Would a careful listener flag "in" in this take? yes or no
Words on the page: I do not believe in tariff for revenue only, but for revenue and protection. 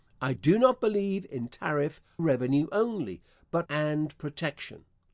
no